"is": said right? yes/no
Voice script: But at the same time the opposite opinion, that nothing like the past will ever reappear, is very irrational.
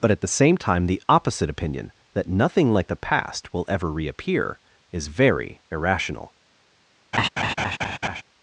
yes